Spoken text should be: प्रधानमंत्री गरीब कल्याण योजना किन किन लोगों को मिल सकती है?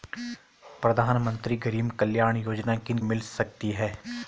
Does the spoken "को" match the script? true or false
false